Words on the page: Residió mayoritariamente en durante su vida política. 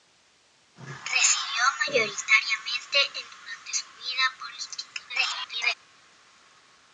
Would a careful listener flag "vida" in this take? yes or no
no